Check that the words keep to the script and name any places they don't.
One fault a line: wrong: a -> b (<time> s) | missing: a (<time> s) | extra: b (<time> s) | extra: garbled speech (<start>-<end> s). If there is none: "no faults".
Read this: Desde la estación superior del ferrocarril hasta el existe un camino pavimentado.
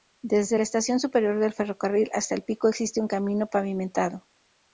extra: pico (2.4 s)